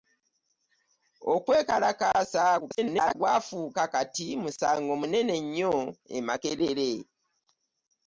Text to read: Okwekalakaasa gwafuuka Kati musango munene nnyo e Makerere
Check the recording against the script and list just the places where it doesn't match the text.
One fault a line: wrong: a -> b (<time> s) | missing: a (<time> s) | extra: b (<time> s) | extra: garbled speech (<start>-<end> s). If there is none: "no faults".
extra: garbled speech (2.6-3.2 s)